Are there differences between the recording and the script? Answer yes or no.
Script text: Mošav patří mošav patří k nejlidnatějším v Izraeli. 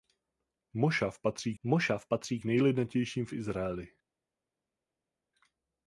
no